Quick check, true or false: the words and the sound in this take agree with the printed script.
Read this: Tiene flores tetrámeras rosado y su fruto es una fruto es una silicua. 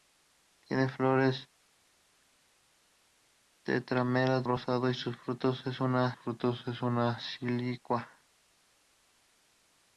true